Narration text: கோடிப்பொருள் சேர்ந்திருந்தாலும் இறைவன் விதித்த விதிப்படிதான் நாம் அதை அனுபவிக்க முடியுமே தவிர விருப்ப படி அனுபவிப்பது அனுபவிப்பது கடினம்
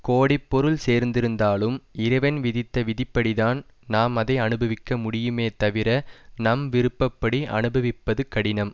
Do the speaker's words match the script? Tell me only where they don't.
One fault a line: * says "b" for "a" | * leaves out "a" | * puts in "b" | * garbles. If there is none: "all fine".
* puts in "நம்"
* leaves out "அனுபவிப்பது"